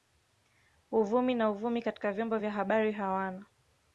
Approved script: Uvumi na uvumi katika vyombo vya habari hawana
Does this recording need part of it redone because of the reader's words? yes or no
no